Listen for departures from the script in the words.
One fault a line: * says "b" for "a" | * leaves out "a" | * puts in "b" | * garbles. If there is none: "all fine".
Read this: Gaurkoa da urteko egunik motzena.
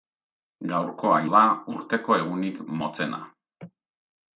all fine